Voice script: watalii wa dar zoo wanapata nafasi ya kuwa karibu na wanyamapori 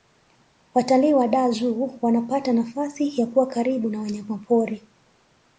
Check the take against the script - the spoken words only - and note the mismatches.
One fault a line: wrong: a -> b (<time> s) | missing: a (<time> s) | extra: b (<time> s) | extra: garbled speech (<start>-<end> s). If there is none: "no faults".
no faults